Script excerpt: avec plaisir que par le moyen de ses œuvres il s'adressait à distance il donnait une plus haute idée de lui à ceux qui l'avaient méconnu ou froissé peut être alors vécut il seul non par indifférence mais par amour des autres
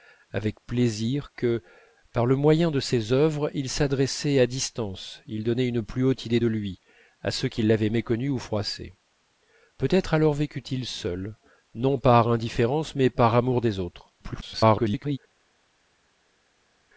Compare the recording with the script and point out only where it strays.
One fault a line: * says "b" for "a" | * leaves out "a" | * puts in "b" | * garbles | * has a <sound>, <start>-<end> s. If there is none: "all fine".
* garbles